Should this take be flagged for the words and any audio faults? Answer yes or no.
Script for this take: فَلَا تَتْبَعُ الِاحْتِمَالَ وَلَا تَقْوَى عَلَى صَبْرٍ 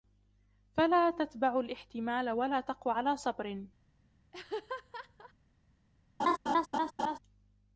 yes